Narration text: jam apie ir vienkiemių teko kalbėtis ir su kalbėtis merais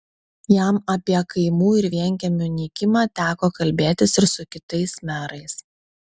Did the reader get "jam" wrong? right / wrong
right